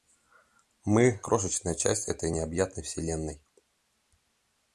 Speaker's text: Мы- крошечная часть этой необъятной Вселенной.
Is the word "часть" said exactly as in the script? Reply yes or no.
yes